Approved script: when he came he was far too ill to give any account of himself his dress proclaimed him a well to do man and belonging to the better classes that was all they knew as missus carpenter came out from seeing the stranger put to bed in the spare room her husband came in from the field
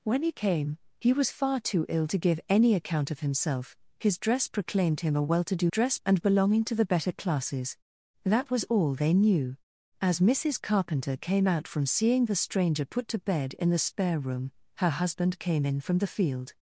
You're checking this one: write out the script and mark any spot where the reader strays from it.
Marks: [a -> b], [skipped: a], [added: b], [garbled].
when he came he was far too ill to give any account of himself his dress proclaimed him a well to do [man -> dress] and belonging to the better classes that was all they knew as missus carpenter came out from seeing the stranger put to bed in the spare room her husband came in from the field